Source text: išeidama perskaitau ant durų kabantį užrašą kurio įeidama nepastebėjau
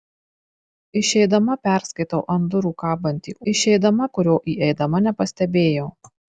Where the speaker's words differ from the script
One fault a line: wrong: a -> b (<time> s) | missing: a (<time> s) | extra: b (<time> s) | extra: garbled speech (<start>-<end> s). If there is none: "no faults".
wrong: užrašą -> išeidama (3.5 s)